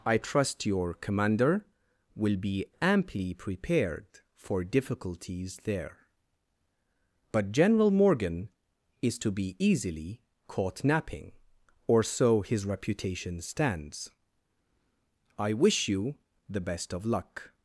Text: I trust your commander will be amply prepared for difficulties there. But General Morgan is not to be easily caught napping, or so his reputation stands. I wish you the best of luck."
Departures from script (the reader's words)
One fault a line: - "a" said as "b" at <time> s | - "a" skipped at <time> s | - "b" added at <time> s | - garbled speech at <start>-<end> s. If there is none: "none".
- "not" skipped at 9.2 s